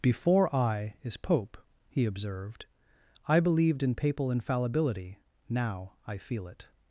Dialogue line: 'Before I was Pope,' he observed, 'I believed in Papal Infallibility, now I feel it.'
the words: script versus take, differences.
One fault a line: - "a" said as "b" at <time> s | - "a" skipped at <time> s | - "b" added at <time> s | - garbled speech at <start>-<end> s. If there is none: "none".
- "was" said as "is" at 1.0 s